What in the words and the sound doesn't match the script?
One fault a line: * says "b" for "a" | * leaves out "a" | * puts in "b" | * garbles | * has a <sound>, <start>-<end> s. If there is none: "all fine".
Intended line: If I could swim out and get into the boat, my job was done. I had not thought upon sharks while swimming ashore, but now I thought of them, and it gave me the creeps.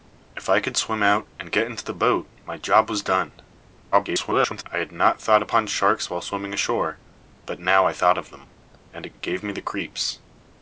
* garbles
* puts in "it"